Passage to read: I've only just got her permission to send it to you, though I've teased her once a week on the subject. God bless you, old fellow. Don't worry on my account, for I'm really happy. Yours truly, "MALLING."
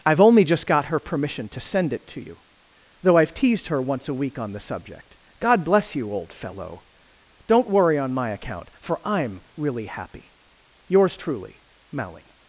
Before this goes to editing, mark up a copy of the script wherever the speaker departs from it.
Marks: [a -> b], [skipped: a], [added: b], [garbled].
I've only just got her permission to send it to you, though I've teased her once a week on the subject. God bless you, old fellow. Don't worry on my account, for I'm really happy. Yours truly, "MALLING."